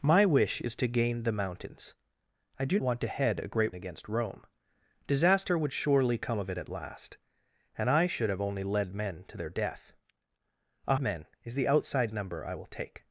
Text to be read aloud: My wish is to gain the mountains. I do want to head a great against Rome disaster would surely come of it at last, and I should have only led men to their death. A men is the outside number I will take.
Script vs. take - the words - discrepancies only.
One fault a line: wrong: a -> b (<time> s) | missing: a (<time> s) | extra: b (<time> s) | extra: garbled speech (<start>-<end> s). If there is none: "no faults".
no faults